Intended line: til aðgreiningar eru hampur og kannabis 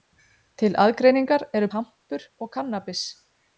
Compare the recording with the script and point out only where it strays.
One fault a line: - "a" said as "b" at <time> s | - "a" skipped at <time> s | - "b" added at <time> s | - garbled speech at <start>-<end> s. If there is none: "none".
none